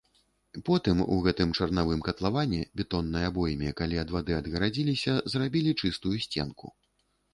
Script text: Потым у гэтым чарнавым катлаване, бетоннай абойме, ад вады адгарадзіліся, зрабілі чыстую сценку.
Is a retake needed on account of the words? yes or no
yes